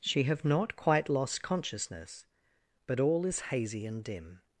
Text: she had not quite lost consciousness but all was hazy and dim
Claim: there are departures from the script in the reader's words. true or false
true